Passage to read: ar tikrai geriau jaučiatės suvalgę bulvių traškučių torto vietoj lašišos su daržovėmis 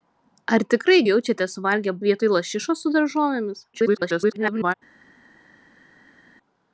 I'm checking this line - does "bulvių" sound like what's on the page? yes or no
no